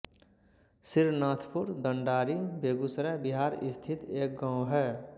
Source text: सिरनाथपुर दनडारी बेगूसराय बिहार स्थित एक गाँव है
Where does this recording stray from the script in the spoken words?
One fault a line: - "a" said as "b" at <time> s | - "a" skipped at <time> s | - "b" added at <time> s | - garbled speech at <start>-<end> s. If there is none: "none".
none